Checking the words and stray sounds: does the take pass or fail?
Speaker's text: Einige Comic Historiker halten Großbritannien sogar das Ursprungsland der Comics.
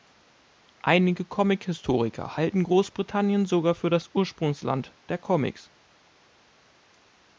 fail